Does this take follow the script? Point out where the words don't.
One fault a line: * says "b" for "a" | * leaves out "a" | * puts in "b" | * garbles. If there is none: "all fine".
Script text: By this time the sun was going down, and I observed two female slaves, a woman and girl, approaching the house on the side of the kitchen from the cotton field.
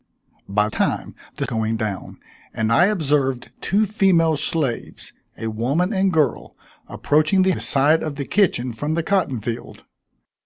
* leaves out "this"
* leaves out "sun was"
* leaves out "house on"